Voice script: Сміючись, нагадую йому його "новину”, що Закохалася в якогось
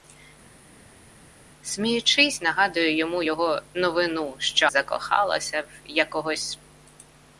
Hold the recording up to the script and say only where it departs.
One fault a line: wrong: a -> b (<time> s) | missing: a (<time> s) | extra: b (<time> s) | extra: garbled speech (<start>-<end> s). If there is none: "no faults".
no faults